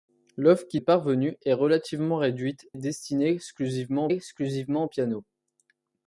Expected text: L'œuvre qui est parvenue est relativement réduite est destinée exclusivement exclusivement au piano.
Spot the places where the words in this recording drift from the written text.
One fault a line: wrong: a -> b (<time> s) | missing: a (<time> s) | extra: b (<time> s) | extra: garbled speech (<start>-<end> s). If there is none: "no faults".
no faults